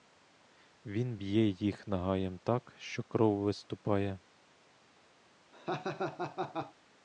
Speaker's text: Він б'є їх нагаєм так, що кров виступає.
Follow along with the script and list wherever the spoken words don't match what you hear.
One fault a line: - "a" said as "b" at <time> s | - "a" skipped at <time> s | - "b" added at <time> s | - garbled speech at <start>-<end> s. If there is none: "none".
none